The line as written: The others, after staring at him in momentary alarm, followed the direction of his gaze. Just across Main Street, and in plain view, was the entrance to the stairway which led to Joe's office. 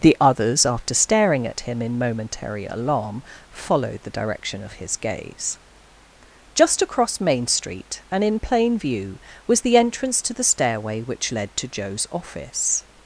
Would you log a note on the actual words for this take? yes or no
no